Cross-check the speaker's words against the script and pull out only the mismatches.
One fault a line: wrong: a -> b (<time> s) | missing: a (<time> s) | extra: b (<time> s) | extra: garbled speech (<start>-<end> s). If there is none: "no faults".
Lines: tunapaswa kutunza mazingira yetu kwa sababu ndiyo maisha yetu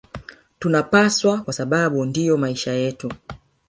missing: kutunza mazingira yetu (1.4 s)